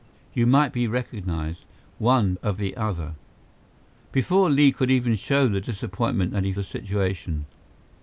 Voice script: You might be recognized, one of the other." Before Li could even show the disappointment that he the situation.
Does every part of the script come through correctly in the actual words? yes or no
yes